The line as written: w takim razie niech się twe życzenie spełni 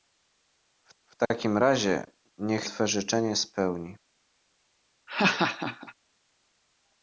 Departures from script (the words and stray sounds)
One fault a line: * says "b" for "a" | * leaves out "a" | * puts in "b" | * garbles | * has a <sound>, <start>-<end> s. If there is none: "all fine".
* puts in "w"
* leaves out "się"
* has a laugh, 5.1-5.9 s